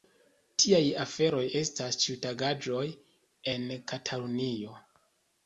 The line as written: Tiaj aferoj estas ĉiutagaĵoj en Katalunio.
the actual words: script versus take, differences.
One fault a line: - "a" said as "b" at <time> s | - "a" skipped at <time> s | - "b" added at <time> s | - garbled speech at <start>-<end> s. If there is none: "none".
none